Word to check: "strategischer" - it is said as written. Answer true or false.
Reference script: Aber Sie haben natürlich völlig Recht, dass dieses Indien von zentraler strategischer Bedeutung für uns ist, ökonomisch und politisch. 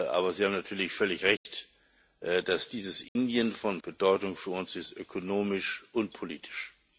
false